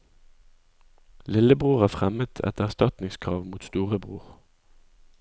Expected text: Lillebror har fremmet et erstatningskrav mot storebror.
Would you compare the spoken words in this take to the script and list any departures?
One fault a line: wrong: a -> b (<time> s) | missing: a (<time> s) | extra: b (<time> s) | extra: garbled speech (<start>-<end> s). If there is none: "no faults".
no faults